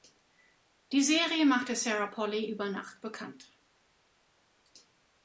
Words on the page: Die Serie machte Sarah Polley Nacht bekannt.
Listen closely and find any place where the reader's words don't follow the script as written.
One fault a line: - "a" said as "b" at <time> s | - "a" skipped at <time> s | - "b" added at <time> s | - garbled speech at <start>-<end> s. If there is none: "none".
- "über" added at 2.5 s